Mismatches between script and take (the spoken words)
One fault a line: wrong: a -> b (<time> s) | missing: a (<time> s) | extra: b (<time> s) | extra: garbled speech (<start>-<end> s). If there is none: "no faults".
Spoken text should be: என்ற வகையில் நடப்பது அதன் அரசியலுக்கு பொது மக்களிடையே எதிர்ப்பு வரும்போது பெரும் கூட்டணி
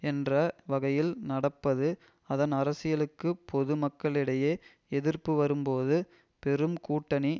no faults